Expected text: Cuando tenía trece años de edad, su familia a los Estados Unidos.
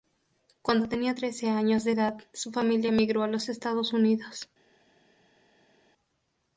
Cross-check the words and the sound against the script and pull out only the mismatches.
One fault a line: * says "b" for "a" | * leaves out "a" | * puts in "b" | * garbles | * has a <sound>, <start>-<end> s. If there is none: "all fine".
* puts in "emigró"